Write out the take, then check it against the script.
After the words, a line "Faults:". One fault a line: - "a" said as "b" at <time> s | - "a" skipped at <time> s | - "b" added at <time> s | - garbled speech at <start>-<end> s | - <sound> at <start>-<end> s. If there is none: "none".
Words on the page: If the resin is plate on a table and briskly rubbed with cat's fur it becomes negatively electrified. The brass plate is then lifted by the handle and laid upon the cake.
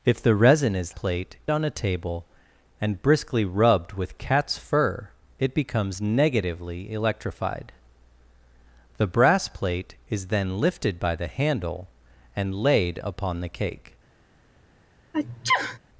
If the resin is plate on a table and briskly rubbed with cat's fur it becomes negatively electrified. The brass plate is then lifted by the handle and laid upon the cake.
Faults:
- sneeze at 15.1-15.8 s